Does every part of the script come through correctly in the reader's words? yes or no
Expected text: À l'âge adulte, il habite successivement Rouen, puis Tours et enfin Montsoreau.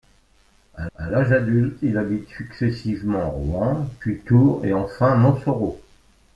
no